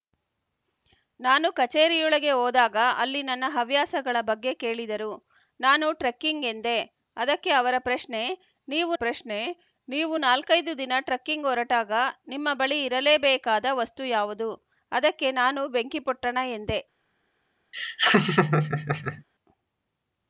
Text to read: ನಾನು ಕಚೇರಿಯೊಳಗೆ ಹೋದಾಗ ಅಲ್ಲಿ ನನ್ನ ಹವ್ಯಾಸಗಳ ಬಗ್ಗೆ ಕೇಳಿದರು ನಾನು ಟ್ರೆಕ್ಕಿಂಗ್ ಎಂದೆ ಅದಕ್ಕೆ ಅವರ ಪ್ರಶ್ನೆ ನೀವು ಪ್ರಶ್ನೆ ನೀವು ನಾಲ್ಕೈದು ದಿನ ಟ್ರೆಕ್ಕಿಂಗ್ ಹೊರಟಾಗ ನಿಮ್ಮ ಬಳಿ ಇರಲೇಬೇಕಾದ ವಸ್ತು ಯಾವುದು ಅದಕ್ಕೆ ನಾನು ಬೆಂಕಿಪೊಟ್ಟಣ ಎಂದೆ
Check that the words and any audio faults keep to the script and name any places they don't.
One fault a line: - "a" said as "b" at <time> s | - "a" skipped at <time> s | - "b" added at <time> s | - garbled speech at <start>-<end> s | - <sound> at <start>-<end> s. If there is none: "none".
- laugh at 17.7-19.2 s